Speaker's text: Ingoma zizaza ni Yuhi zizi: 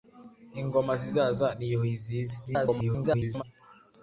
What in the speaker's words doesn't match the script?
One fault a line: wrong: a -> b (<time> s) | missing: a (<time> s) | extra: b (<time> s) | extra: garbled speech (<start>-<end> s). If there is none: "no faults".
extra: garbled speech (2.5-3.4 s)